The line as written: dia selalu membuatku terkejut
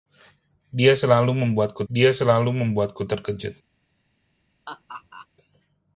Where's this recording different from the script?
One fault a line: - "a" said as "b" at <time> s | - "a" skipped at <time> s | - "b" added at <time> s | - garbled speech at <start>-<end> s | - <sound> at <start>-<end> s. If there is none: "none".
- "dia selalu membuatku" added at 1.9 s
- laugh at 4.7-5.3 s